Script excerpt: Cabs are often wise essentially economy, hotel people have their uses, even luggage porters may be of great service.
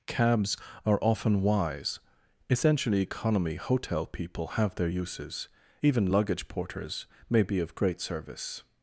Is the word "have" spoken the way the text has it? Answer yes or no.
yes